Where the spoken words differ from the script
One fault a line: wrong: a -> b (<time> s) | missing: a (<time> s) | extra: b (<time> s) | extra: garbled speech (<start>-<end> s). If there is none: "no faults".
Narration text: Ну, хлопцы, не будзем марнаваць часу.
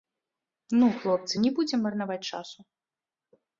no faults